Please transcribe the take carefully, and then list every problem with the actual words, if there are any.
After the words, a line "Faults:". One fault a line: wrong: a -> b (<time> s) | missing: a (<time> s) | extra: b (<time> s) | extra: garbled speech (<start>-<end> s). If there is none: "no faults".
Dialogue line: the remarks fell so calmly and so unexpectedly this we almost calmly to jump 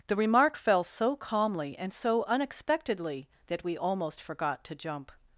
the remark fell so calmly and so unexpectedly that we almost forgot to jump
Faults:
wrong: remarks -> remark (0.1 s)
wrong: this -> that (3.5 s)
wrong: calmly -> forgot (4.2 s)